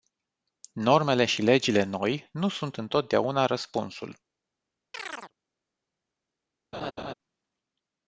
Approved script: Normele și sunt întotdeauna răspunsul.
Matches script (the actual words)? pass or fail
fail